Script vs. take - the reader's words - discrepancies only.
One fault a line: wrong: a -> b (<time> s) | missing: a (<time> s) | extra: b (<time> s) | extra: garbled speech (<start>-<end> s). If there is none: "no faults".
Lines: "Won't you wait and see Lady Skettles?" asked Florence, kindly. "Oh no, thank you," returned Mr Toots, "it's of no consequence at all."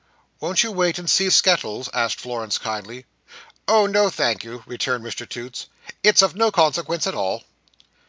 missing: Lady (1.3 s)